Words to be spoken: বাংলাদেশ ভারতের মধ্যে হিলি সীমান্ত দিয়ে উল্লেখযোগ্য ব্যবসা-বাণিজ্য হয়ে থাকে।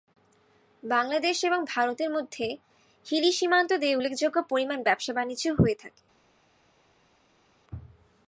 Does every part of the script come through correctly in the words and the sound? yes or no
no